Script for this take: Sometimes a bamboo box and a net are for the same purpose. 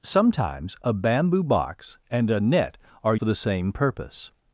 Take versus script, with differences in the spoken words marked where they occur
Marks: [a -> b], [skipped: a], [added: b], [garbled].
Sometimes a bamboo box and a net are for the same purpose.